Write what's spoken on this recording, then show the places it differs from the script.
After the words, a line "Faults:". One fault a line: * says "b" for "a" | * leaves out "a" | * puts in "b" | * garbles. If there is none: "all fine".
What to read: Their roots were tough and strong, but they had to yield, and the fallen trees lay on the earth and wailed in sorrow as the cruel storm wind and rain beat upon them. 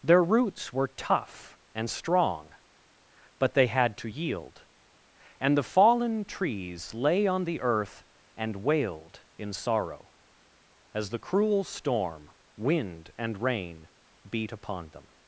Their roots were tough and strong, but they had to yield, and the fallen trees lay on the earth and wailed in sorrow as the cruel storm wind and rain beat upon them.
Faults:
all fine